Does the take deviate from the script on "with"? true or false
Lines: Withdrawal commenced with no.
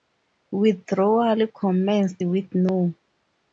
false